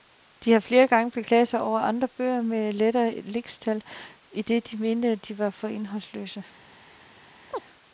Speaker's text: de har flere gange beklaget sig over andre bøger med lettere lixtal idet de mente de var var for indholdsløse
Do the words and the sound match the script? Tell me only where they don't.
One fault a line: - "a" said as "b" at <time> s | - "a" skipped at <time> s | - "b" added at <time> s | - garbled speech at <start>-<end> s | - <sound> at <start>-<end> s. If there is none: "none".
- "var" skipped at 5.5 s
- chirp at 7.5-7.6 s